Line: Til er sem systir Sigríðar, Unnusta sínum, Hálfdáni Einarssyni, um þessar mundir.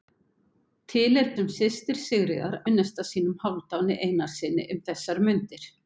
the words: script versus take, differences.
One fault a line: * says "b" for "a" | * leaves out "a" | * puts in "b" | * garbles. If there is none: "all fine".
all fine